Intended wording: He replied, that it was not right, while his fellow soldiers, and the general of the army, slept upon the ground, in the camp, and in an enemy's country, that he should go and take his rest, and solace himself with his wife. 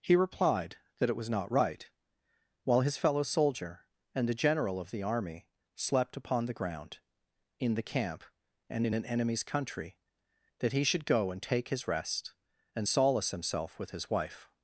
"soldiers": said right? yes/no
no